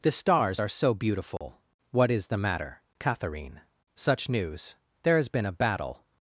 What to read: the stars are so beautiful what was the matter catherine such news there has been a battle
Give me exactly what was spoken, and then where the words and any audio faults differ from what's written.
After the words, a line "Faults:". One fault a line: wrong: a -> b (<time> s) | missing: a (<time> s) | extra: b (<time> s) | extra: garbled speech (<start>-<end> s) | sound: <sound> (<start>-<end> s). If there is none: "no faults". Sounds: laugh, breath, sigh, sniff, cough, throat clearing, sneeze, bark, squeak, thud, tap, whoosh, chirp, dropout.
the stars are so beautiful what is the matter catherine such news there has been a battle
Faults:
sound: dropout (1.4-1.4 s)
wrong: was -> is (2.1 s)